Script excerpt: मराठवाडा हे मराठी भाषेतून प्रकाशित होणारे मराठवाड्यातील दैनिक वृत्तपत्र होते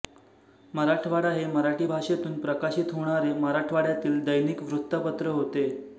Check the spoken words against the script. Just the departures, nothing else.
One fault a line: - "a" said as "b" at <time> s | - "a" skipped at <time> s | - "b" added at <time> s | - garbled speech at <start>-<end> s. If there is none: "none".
none